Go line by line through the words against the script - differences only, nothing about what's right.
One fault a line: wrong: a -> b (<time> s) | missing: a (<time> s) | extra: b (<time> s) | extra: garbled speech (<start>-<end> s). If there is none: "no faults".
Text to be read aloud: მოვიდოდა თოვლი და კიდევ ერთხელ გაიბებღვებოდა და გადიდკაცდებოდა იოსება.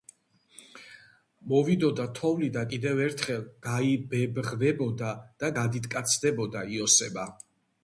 no faults